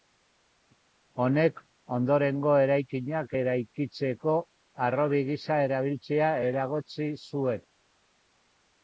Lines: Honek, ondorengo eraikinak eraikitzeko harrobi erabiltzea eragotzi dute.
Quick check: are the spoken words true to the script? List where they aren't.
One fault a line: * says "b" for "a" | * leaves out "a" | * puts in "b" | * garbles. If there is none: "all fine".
* puts in "gisa"
* says "zuen" for "dute"